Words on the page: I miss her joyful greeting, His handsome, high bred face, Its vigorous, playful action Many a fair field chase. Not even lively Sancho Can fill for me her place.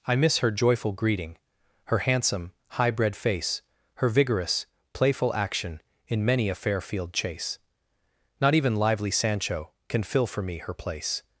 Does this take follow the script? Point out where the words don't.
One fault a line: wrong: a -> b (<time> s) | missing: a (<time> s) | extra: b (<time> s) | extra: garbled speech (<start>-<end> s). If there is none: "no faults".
wrong: His -> Her (1.9 s)
wrong: Its -> Her (4.0 s)
extra: In (6.1 s)